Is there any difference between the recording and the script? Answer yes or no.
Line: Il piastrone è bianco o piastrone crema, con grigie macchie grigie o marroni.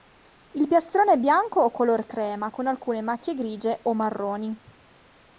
yes